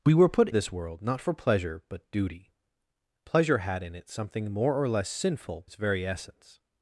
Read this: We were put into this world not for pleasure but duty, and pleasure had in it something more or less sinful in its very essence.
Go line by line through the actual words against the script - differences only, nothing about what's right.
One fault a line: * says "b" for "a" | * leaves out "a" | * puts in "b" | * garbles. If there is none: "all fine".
* leaves out "into"
* leaves out "and"
* leaves out "in"